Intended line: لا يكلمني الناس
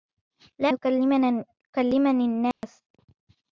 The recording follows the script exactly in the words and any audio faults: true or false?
false